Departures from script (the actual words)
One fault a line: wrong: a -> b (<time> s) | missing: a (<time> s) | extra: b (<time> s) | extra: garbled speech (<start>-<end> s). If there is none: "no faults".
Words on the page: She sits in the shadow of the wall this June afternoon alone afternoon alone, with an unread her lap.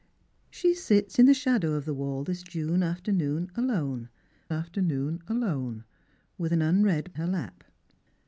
no faults